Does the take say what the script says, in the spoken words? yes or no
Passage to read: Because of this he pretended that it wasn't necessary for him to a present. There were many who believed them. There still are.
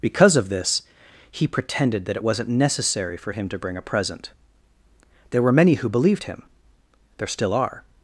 no